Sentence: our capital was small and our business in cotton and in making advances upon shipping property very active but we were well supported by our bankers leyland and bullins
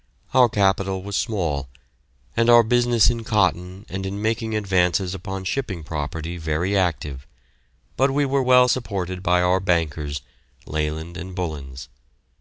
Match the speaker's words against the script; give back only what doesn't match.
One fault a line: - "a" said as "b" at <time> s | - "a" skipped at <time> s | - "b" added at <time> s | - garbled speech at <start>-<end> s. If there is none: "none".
none